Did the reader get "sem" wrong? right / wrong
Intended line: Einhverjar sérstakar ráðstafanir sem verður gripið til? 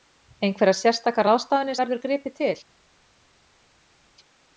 wrong